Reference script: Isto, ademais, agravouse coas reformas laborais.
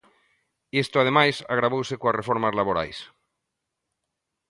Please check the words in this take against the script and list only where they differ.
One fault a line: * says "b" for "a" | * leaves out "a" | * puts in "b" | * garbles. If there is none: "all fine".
all fine